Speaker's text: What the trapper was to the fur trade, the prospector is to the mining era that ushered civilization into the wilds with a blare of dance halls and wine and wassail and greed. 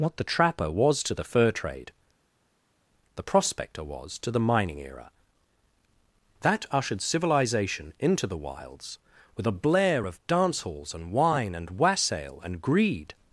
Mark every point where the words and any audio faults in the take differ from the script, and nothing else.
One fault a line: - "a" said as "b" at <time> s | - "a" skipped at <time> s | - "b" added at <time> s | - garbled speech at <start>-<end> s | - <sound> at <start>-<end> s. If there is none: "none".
- "is" said as "was" at 3.8 s